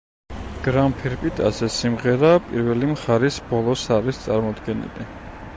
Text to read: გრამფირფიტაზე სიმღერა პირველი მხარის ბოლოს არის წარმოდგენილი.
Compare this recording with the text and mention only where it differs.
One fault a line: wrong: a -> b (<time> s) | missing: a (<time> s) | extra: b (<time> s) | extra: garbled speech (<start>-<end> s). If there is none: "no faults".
no faults